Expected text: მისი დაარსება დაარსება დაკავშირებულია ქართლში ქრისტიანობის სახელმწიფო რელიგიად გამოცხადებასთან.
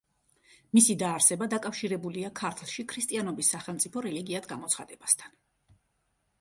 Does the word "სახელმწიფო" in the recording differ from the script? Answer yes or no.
no